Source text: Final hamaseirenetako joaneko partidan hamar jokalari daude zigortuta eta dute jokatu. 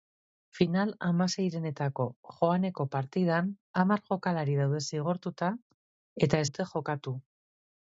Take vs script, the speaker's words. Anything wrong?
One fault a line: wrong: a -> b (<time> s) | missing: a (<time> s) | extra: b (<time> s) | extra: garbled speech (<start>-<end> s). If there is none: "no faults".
no faults